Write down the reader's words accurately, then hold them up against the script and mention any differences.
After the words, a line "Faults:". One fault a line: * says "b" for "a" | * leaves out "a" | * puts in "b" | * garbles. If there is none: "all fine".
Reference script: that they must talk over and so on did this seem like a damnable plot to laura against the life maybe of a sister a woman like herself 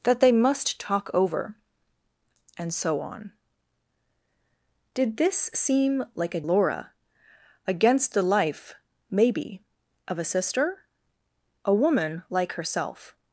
that they must talk over and so on did this seem like a laura against the life maybe of a sister a woman like herself
Faults:
* leaves out "damnable plot to"